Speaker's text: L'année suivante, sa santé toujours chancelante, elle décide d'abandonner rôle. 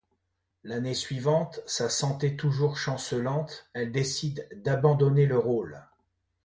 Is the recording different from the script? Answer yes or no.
yes